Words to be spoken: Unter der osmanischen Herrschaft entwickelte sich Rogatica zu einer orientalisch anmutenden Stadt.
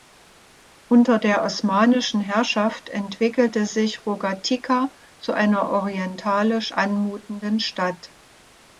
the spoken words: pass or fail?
pass